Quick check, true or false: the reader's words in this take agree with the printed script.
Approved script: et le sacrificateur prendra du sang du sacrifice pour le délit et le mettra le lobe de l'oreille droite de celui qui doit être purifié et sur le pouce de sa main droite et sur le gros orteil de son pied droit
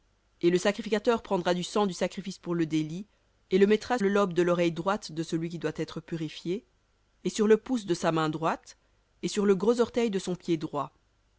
true